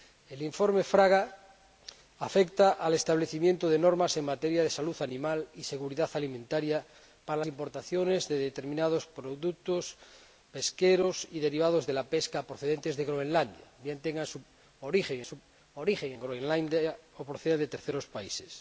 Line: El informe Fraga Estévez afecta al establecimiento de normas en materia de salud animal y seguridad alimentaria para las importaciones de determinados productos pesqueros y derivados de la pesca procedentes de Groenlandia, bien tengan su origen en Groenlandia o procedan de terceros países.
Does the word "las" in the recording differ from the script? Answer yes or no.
yes